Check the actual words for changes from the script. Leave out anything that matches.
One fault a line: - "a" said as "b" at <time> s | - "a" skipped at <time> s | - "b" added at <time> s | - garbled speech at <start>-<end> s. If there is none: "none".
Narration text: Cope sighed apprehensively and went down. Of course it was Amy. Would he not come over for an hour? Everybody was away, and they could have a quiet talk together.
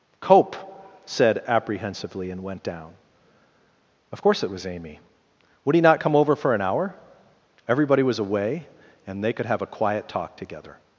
- "sighed" said as "said" at 1.1 s